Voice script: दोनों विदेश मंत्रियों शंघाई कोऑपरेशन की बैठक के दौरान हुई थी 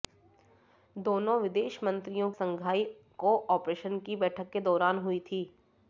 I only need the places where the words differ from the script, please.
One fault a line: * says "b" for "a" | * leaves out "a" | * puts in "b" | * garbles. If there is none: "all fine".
all fine